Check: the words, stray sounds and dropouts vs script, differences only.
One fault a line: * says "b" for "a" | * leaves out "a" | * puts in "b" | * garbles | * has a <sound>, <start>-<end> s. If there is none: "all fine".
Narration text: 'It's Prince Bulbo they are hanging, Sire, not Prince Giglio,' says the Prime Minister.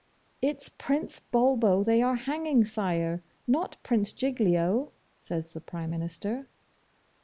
all fine